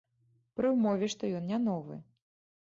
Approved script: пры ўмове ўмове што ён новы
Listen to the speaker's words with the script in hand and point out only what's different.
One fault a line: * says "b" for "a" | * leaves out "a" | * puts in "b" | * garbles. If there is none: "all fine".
* leaves out "ўмове"
* puts in "не"